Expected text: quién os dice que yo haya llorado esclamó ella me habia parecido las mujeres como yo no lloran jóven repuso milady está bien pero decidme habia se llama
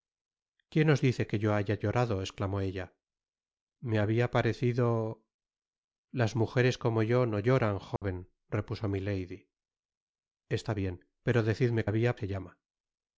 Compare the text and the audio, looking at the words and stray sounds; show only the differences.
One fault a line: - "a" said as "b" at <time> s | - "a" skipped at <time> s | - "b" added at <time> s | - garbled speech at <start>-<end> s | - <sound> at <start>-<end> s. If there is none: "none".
- dropout at 8.0-8.0 s